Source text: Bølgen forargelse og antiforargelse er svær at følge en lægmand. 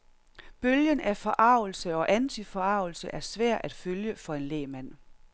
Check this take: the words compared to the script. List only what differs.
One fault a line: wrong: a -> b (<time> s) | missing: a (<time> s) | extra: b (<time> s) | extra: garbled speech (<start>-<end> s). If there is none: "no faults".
extra: af (1.0 s)
extra: for (4.2 s)